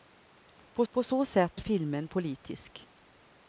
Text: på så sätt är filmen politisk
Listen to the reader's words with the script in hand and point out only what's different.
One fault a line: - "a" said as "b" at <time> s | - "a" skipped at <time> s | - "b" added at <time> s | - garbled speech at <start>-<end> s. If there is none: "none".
- "på" added at 0.9 s
- "är" skipped at 1.6 s